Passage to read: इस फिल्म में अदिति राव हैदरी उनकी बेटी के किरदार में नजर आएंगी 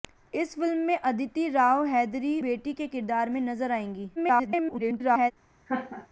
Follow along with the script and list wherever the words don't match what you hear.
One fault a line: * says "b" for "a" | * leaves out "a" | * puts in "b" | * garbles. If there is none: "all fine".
* leaves out "उनकी"
* garbles